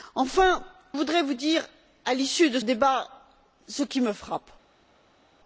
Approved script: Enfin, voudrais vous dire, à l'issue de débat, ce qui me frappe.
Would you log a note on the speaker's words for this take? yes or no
no